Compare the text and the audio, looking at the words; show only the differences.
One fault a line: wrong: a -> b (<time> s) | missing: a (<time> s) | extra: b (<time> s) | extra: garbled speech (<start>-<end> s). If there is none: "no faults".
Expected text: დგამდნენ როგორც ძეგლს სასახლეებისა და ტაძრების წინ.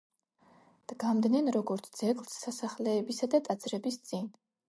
no faults